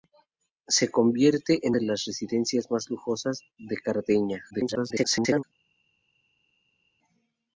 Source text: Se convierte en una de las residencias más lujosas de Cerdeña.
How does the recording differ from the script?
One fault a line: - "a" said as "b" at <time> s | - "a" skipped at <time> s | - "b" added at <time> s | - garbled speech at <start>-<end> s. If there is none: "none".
- "una" skipped at 1.8 s
- garbled speech at 4.5-5.4 s